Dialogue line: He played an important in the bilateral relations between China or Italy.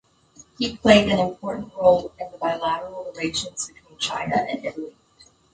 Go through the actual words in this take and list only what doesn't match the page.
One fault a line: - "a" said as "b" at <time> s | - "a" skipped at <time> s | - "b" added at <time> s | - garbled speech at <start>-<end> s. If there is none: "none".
- "role" added at 1.8 s
- "or" said as "and" at 4.5 s